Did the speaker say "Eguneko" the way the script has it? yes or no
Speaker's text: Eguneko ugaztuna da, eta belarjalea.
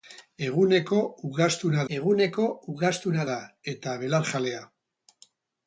yes